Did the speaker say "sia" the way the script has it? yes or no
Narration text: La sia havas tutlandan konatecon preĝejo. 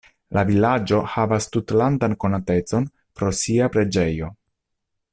no